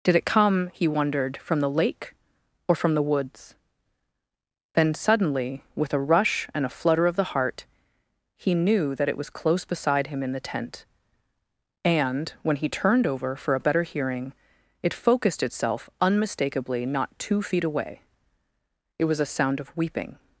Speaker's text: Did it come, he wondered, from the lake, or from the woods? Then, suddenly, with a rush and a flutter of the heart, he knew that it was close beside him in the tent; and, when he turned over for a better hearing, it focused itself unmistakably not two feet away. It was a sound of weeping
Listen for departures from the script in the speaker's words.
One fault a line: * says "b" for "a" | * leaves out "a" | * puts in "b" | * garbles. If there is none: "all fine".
all fine